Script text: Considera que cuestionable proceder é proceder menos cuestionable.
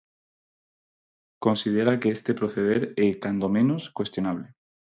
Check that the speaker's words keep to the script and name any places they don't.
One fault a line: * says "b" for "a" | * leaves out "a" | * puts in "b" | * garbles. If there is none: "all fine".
* says "este" for "cuestionable"
* says "cando" for "proceder"